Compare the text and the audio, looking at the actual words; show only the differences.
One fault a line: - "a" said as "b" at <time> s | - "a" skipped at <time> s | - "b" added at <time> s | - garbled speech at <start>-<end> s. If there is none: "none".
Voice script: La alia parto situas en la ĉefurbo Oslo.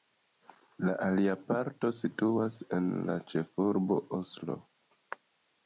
none